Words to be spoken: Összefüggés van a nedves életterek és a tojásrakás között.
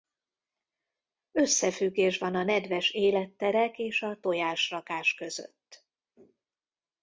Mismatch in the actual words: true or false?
false